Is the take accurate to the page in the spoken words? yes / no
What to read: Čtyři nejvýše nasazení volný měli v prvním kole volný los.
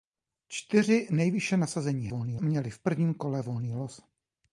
yes